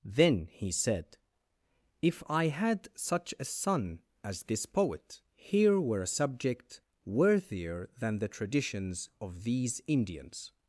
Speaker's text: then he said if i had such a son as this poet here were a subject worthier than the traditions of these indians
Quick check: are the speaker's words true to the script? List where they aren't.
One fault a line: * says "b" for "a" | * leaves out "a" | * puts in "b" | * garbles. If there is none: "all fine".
all fine